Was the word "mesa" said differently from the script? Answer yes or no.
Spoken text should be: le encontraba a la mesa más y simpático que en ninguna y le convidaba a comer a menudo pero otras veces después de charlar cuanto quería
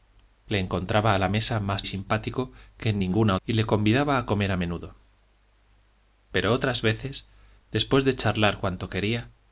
no